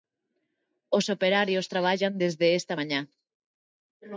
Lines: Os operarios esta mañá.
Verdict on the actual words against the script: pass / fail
fail